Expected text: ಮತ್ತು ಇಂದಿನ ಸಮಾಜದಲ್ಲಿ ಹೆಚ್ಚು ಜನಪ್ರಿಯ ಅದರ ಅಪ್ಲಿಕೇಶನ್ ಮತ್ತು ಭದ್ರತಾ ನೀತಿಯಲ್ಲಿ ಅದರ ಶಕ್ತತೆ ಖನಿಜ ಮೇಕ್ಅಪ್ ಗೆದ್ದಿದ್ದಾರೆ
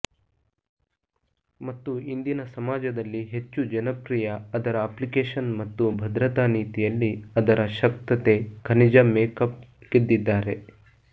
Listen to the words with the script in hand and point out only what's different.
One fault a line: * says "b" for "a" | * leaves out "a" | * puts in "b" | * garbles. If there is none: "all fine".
all fine